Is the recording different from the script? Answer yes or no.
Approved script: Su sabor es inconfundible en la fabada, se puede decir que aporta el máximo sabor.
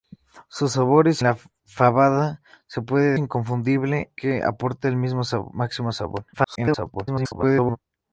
yes